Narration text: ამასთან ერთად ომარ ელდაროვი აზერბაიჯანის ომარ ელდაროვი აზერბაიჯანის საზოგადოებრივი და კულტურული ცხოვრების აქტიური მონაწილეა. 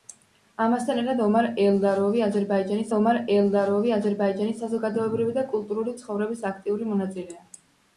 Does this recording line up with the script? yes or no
yes